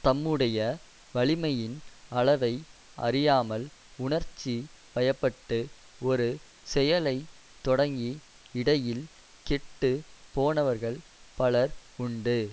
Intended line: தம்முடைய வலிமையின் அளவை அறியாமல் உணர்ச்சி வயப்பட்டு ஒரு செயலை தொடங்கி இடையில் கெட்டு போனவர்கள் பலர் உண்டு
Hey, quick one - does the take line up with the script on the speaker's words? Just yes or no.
yes